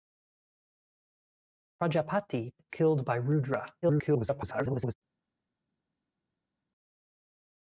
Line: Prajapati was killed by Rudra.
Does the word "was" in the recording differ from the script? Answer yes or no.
yes